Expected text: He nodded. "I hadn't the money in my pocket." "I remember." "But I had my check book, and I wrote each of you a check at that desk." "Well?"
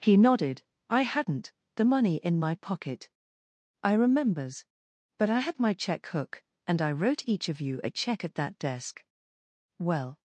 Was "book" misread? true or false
true